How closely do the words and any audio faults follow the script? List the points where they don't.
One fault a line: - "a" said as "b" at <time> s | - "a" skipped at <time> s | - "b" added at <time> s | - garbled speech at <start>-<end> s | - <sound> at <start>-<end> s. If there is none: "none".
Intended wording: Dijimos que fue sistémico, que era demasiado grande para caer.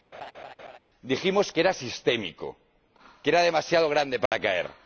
- laugh at 0.1-0.8 s
- "fue" said as "era" at 1.6 s
- dropout at 4.3-4.3 s